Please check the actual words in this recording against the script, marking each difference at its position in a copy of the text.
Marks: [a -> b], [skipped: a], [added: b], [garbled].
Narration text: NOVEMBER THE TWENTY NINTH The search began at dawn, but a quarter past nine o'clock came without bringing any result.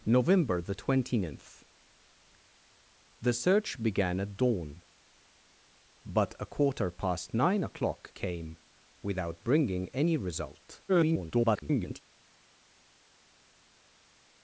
NOVEMBER THE TWENTY NINTH The search began at dawn, but a quarter past nine o'clock came without bringing any result. [garbled]